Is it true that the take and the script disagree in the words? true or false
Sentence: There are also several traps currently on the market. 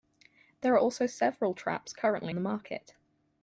true